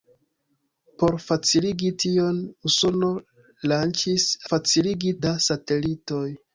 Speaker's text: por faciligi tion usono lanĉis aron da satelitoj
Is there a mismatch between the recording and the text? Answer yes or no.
yes